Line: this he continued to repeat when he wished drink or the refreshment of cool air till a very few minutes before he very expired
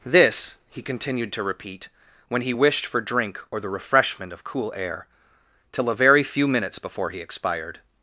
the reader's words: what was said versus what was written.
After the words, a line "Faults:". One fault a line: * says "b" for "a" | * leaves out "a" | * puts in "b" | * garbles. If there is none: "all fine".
this he continued to repeat when he wished for drink or the refreshment of cool air till a very few minutes before he expired
Faults:
* puts in "for"
* leaves out "very"